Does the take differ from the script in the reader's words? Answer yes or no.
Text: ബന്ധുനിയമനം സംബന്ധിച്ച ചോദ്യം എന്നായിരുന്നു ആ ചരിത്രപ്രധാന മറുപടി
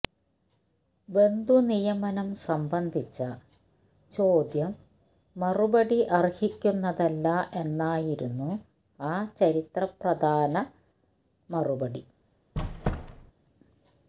yes